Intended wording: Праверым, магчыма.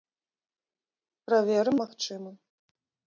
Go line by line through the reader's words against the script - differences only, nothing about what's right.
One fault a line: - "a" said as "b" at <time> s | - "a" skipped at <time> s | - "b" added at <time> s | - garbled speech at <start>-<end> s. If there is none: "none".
none